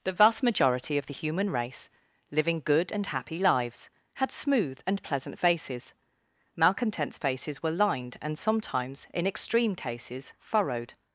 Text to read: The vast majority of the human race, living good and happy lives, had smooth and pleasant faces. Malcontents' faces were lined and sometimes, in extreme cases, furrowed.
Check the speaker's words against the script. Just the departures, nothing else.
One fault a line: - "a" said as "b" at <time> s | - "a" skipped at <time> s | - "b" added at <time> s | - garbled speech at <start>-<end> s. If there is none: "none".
none